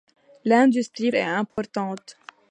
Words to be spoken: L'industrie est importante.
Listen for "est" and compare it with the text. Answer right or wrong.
right